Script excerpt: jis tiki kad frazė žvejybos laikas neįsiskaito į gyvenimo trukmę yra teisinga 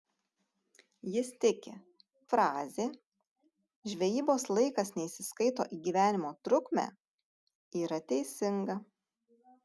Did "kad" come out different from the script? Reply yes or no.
yes